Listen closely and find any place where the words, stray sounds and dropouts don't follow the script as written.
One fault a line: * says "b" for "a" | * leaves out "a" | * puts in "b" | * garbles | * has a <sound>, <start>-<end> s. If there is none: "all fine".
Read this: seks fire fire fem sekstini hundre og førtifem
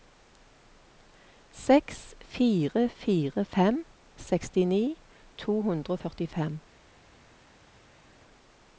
* puts in "to"